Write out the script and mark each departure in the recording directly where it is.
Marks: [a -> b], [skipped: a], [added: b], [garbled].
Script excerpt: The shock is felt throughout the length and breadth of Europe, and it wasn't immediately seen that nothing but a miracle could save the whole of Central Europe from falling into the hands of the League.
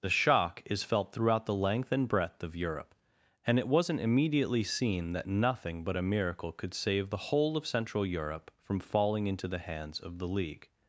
The shock is felt throughout the length and breadth of Europe, and it wasn't immediately seen that nothing but a miracle could save the whole of Central Europe from falling into the hands of the League.